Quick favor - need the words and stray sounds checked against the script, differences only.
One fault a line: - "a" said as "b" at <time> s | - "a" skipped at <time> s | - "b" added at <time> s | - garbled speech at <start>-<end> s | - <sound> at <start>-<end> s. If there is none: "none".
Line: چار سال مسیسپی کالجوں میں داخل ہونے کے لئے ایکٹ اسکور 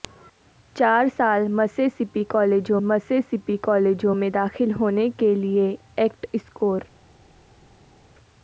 - "مسیسپی کالجوں" added at 2.8 s